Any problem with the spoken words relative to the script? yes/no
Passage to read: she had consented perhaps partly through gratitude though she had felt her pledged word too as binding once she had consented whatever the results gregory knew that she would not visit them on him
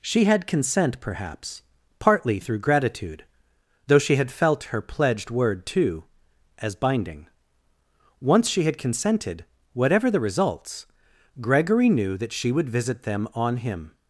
yes